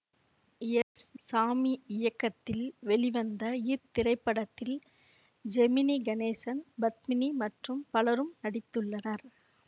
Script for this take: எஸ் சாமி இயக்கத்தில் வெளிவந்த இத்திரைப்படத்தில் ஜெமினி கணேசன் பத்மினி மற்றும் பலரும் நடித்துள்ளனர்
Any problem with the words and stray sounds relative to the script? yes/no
yes